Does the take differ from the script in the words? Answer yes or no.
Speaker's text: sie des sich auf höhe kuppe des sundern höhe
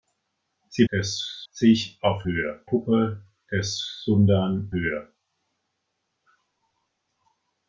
no